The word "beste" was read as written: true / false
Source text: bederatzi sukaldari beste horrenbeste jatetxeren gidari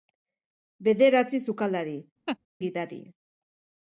false